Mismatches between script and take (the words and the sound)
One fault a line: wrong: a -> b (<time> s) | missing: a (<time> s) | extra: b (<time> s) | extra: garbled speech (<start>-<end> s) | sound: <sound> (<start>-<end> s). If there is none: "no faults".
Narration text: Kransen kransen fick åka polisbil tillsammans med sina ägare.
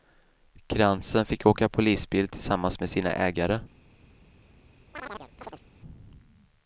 missing: kransen (1.2 s)
sound: chirp (4.9-5.6 s)